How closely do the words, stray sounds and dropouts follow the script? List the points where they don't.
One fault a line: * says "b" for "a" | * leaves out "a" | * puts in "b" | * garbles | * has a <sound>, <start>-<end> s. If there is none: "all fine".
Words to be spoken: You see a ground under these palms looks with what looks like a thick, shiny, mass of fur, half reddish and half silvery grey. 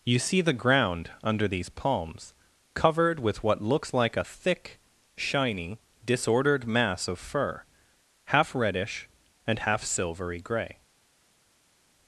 * says "the" for "a"
* says "covered" for "looks"
* puts in "disordered"